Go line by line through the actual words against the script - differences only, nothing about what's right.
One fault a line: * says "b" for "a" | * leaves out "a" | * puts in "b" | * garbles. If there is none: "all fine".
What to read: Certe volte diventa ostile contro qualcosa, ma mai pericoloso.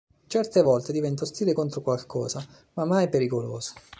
all fine